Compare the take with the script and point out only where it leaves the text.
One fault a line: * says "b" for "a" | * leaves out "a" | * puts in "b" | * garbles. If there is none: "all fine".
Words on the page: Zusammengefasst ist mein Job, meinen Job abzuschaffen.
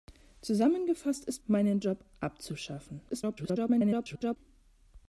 * leaves out "mein Job"
* garbles